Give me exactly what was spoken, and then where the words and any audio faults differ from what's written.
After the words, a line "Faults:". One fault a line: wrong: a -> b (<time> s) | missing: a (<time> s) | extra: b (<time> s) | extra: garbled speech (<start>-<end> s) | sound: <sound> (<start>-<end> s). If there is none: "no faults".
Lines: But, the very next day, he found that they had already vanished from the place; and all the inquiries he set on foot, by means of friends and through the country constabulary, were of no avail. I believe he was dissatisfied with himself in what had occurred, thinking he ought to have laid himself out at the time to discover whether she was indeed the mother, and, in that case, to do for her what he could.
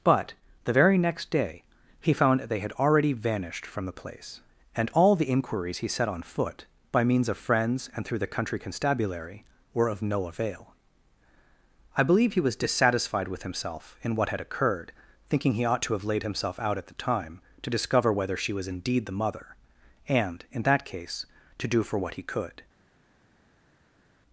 But, the very next day, he found that they had already vanished from the place; and all the inquiries he set on foot, by means of friends and through the country constabulary, were of no avail. I believe he was dissatisfied with himself in what had occurred, thinking he ought to have laid himself out at the time to discover whether she was indeed the mother, and, in that case, to do for what he could.
Faults:
missing: her (22.0 s)